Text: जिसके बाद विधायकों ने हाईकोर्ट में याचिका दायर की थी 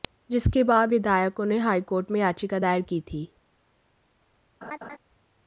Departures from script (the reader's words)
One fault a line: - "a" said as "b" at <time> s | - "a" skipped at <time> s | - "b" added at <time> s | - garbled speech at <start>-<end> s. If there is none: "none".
none